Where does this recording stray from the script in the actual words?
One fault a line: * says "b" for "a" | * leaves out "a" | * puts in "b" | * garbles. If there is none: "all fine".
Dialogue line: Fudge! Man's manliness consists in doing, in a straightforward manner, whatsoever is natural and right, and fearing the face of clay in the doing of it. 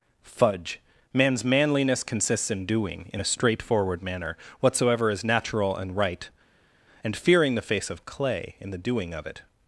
all fine